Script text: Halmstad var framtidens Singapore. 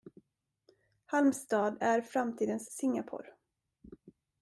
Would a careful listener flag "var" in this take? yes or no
yes